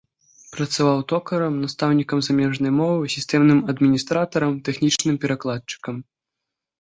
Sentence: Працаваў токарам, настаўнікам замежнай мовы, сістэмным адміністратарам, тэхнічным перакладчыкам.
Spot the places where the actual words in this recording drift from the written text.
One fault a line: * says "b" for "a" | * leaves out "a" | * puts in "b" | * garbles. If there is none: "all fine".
all fine